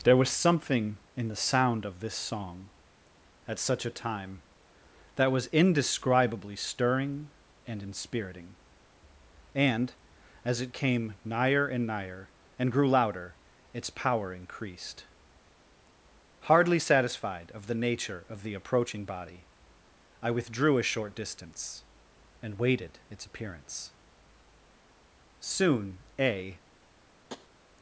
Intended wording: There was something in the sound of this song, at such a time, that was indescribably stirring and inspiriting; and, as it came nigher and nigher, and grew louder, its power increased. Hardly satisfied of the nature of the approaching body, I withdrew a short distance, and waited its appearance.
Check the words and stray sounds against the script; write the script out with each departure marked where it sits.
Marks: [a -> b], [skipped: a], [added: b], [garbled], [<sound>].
There was something in the sound of this song, at such a time, that was indescribably stirring and inspiriting; and, as it came nigher and nigher, and grew louder, its power increased. Hardly satisfied of the nature of the approaching body, I withdrew a short distance, and waited its appearance. [added: Soon a] [tap]